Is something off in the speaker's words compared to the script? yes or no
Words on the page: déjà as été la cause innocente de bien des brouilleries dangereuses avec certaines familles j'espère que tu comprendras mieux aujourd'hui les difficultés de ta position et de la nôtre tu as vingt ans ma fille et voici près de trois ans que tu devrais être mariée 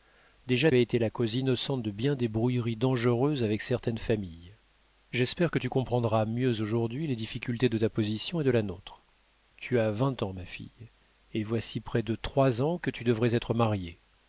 no